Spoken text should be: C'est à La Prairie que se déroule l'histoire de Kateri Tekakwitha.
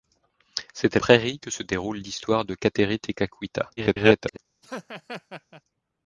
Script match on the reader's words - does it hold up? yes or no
no